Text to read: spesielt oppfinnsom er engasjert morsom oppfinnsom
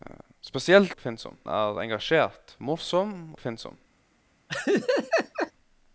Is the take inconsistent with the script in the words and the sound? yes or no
yes